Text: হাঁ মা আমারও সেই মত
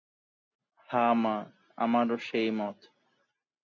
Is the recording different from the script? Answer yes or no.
no